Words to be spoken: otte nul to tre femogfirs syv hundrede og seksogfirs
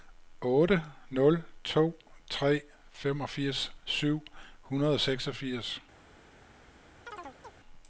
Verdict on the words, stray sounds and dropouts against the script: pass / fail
fail